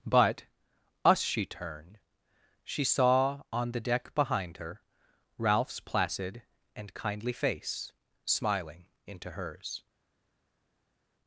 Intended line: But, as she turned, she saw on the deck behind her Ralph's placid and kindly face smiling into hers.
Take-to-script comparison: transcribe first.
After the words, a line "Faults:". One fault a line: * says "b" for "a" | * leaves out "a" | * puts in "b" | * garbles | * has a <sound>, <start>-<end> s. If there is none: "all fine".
But, us she turned, she saw on the deck behind her Ralph's placid and kindly face smiling into hers.
Faults:
* says "us" for "as"